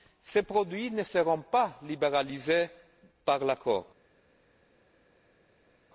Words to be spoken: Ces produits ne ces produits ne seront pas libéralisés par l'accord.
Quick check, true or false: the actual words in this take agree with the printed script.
false